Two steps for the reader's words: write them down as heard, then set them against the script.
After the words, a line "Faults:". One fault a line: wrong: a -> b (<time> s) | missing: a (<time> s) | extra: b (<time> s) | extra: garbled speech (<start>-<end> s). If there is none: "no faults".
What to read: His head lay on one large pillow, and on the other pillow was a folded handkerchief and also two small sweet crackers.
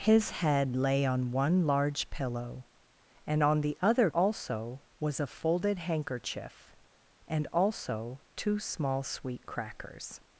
His head lay on one large pillow, and on the other also was a folded handkerchief and also two small sweet crackers.
Faults:
wrong: pillow -> also (4.1 s)